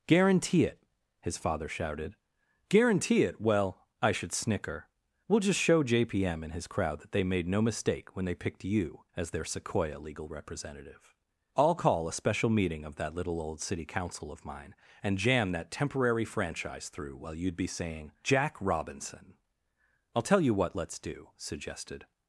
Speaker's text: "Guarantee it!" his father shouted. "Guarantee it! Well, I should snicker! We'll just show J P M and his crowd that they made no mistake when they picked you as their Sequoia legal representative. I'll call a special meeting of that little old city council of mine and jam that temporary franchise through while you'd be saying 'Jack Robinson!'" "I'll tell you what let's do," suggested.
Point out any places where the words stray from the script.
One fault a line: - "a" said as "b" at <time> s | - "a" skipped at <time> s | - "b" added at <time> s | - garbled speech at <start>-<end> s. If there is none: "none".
none